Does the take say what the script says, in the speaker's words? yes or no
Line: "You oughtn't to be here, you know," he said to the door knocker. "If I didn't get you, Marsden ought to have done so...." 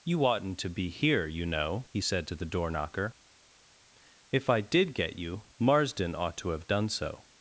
no